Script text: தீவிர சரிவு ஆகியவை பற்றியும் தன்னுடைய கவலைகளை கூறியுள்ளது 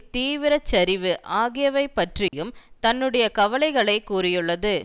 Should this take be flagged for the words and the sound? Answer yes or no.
yes